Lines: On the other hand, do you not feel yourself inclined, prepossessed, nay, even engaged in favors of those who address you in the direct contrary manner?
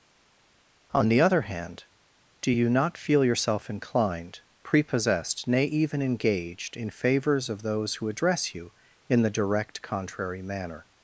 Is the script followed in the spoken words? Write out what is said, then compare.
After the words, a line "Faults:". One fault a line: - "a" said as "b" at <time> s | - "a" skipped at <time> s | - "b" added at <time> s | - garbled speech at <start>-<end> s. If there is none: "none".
On the other hand, do you not feel yourself inclined, prepossessed, nay, even engaged in favors of those who address you in the direct contrary manner?
Faults:
none